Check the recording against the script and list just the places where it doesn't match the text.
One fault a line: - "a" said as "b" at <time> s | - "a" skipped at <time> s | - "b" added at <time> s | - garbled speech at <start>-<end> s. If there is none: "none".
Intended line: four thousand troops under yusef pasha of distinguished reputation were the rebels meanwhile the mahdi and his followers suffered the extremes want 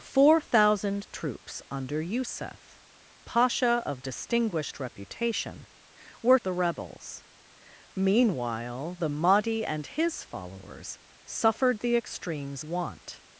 none